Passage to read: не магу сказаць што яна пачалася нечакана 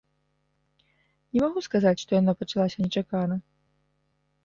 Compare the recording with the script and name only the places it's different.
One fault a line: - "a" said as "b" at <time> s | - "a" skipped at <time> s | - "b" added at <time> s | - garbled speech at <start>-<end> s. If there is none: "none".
none